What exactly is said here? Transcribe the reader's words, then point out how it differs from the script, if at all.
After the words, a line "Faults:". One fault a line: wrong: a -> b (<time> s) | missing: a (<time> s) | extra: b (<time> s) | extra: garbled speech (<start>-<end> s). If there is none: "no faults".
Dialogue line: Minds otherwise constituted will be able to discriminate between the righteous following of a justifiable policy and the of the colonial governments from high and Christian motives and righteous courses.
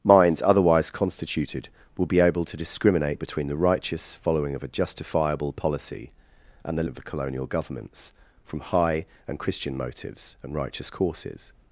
Minds otherwise constituted will be able to discriminate between the righteous following of a justifiable policy and the of the colonial governments from high and Christian motives and righteous courses.
Faults:
no faults